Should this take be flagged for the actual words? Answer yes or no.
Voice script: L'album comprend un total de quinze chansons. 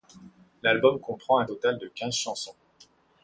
no